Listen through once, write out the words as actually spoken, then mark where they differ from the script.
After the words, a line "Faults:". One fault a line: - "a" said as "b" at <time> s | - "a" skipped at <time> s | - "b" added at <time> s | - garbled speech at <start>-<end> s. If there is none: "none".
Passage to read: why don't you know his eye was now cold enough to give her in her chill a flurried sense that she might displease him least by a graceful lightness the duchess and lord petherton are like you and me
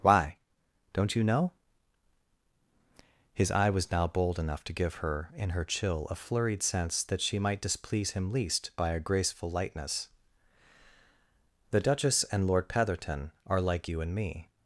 why don't you know his eye was now bold enough to give her in her chill a flurried sense that she might displease him least by a graceful lightness the duchess and lord petherton are like you and me
Faults:
- "cold" said as "bold" at 4.1 s